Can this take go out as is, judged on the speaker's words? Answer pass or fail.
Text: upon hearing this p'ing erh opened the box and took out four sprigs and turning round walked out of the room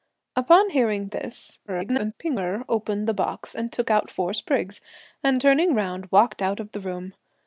fail